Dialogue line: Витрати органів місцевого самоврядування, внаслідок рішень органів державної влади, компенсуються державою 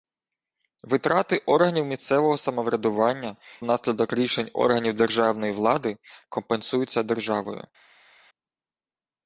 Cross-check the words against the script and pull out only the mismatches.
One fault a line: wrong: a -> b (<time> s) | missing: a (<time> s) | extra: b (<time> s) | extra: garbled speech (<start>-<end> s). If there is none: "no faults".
no faults